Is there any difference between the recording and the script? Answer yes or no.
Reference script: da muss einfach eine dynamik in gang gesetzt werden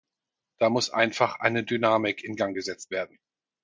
no